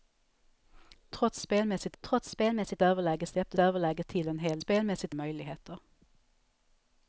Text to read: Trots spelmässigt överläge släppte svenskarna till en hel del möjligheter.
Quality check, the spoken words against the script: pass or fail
fail